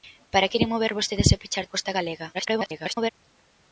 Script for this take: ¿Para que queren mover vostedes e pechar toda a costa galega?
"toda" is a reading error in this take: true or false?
true